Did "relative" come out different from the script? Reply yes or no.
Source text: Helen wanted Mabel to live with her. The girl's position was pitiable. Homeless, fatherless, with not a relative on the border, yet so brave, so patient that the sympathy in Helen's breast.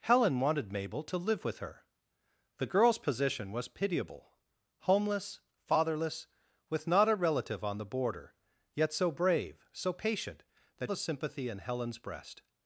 no